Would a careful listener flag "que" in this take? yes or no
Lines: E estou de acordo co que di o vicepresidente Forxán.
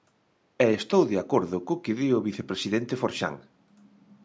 no